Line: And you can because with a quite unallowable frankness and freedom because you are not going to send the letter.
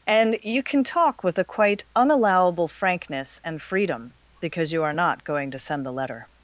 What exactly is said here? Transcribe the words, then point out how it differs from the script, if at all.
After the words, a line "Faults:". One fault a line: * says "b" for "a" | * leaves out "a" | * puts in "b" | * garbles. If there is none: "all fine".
And you can talk with a quite unallowable frankness and freedom because you are not going to send the letter.
Faults:
* says "talk" for "because"